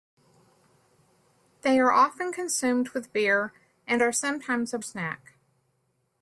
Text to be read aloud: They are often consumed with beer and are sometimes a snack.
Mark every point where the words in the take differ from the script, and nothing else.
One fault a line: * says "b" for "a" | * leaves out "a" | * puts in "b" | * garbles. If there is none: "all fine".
all fine